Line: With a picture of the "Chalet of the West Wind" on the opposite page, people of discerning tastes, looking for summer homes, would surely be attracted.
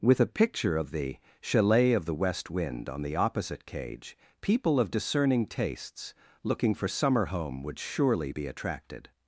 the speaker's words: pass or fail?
fail